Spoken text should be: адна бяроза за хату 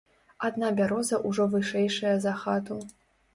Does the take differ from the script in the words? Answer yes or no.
yes